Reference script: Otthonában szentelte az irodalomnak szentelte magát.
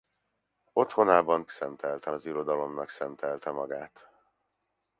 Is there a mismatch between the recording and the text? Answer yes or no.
no